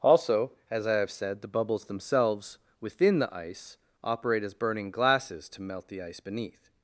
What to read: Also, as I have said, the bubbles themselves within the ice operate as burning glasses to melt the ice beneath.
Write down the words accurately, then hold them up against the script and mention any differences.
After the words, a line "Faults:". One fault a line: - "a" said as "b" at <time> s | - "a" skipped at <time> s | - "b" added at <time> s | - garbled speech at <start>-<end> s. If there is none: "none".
Also, as I have said, the bubbles themselves within the ice operate as burning glasses to melt the ice beneath.
Faults:
none